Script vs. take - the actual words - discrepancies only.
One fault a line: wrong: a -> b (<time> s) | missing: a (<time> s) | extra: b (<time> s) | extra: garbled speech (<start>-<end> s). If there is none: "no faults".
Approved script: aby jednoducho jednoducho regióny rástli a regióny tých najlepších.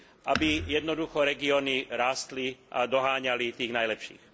missing: jednoducho (1.2 s)
wrong: regióny -> doháňali (2.9 s)